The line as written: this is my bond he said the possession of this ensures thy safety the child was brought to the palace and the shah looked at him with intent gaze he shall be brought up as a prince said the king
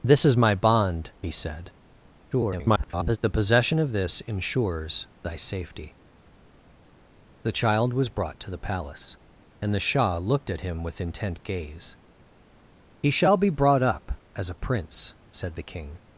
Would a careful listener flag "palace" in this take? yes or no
no